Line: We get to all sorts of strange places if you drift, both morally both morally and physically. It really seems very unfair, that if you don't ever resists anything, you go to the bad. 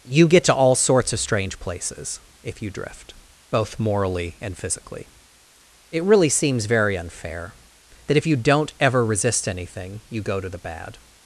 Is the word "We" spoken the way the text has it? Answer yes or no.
no